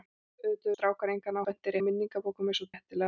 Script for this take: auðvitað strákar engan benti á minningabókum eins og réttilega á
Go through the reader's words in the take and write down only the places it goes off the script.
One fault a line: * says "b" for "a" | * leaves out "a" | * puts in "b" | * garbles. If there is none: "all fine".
all fine